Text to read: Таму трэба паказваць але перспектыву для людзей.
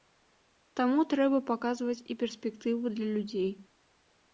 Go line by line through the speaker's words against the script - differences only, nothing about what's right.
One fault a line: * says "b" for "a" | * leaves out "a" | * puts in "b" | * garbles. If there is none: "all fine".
* says "і" for "але"